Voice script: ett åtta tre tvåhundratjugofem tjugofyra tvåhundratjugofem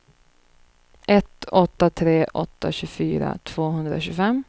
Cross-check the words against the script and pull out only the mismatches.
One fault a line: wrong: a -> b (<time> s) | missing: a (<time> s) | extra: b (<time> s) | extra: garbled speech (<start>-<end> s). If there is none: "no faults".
wrong: tvåhundratjugofem -> åtta (2.3 s)